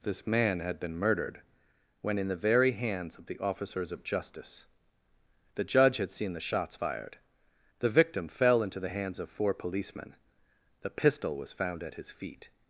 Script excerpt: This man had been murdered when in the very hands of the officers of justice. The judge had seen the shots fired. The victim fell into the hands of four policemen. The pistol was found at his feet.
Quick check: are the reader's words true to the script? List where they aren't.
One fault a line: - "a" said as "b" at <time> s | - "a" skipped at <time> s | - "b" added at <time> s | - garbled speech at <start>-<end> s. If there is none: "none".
none